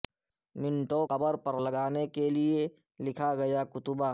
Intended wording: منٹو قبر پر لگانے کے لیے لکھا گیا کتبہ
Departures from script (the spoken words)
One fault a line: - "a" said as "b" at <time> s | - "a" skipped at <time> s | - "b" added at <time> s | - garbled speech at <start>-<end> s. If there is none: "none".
none